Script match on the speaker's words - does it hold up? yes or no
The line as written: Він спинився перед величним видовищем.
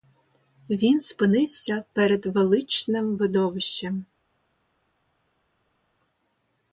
yes